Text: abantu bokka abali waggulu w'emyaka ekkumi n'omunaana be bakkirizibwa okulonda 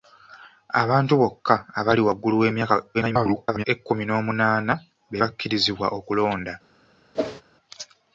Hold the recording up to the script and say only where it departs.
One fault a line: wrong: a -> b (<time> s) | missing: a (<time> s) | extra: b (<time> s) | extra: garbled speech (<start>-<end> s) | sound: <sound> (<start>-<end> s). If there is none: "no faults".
extra: garbled speech (2.9-3.6 s)
sound: whoosh (7.1-7.4 s)